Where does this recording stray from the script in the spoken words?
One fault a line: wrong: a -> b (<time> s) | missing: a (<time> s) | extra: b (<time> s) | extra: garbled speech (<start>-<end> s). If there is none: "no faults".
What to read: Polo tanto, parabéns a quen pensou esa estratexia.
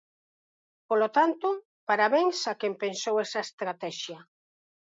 no faults